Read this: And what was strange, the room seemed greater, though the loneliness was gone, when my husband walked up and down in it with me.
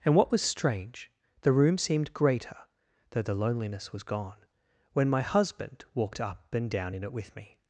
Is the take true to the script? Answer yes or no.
yes